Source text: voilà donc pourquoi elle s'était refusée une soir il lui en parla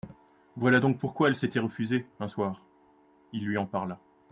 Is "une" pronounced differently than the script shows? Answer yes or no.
yes